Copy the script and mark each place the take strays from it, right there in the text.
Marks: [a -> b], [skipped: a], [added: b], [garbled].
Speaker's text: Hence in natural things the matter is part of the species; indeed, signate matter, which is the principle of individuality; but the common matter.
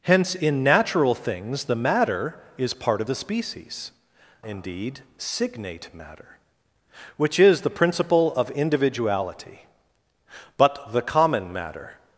Hence in natural things the matter is part of the species; indeed, signate matter, which is the principle of individuality; but the common matter.